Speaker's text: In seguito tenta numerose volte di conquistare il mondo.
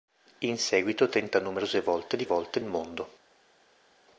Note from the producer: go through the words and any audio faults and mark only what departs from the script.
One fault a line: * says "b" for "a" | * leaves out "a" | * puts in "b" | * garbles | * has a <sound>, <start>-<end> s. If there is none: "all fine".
* says "volte" for "conquistare"